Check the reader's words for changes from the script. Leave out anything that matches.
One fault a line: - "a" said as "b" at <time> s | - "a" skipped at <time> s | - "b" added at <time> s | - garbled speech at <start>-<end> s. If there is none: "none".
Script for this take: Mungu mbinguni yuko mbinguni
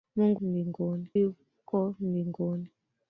none